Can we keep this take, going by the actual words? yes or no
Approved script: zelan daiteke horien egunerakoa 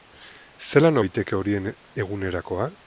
yes